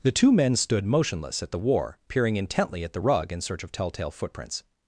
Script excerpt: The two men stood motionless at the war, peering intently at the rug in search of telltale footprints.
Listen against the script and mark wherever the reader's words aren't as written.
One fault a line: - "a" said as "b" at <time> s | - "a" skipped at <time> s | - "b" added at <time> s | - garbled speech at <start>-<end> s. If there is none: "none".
none